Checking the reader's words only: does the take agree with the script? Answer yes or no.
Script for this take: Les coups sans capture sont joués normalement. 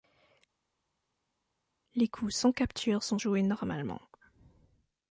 yes